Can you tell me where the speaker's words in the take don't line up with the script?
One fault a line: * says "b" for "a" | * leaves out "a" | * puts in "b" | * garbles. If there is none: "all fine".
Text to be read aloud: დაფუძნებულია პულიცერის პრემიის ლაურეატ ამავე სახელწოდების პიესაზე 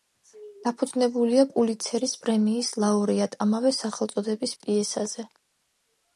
all fine